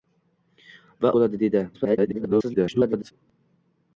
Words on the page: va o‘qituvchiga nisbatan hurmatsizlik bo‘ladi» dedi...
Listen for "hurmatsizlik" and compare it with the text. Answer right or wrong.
wrong